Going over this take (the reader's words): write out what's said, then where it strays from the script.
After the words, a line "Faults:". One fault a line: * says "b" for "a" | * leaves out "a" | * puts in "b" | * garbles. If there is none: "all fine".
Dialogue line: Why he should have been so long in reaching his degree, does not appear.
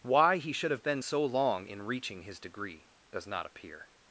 Why he should have been so long in reaching his degree, does not appear.
Faults:
all fine